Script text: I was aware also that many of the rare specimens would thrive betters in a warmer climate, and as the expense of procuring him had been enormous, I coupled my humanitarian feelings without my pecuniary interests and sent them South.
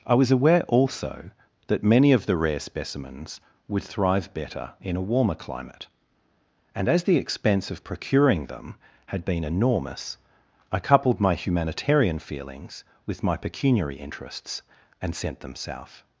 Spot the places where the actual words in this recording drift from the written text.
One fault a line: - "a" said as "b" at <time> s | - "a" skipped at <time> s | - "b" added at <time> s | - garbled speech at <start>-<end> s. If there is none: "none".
- "betters" said as "better" at 4.3 s
- "him" said as "them" at 8.5 s
- "without" said as "with" at 13.1 s